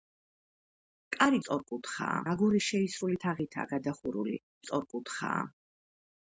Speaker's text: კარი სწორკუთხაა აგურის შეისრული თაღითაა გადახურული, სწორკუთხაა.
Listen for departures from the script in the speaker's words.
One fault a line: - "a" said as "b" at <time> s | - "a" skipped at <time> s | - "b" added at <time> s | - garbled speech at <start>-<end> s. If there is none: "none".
none